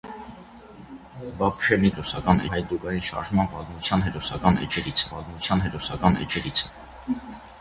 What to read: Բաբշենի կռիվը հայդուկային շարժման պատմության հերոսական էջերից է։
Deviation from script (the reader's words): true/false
true